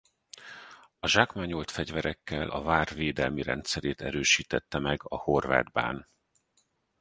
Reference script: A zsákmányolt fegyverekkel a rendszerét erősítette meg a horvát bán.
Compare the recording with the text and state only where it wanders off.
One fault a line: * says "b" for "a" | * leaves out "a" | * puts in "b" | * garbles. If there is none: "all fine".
* puts in "vár védelmi"